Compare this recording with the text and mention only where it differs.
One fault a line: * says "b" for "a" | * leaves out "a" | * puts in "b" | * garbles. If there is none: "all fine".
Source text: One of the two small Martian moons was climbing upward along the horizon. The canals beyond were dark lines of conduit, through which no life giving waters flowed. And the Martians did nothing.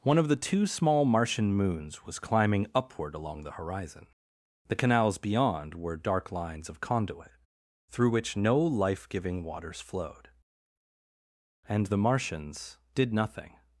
all fine